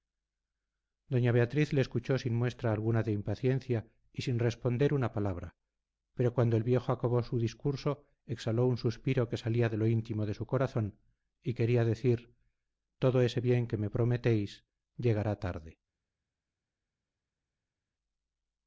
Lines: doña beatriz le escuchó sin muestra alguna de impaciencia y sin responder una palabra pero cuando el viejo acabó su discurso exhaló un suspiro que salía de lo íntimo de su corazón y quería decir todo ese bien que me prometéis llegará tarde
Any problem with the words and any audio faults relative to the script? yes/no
no